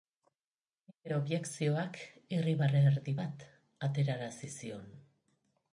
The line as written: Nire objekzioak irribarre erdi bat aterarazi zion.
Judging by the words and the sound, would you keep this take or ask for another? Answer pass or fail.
pass